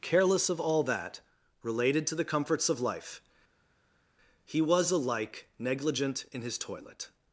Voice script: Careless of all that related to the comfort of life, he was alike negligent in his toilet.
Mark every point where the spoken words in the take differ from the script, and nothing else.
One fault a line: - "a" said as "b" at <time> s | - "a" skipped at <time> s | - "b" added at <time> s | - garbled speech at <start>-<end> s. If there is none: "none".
- "comfort" said as "comforts" at 2.2 s